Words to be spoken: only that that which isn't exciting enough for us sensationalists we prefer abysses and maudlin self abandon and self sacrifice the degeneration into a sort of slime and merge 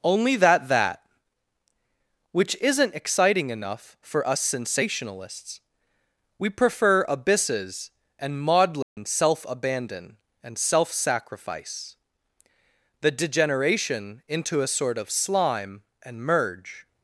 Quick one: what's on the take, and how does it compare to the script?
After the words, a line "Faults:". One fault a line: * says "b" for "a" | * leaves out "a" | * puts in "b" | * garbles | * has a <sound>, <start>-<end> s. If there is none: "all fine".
only that that which isn't exciting enough for us sensationalists we prefer abysses and maudlin self abandon and self sacrifice the degeneration into a sort of slime and merge
Faults:
* has a dropout, 8.8-9.0 s